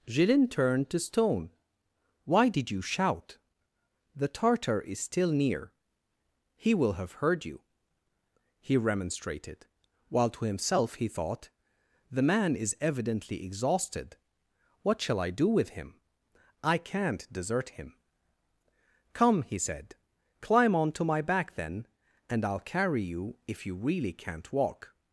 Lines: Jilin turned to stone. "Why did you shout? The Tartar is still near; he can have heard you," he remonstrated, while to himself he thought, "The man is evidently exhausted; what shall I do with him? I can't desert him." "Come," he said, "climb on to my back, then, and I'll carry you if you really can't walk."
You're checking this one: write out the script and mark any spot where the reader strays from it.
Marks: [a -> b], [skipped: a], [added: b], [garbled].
Jilin turned to stone. "Why did you shout? The Tartar is still near; he [can -> will] have heard you," he remonstrated, while to himself he thought, "The man is evidently exhausted; what shall I do with him? I can't desert him." "Come," he said, "climb on to my back, then, and I'll carry you if you really can't walk."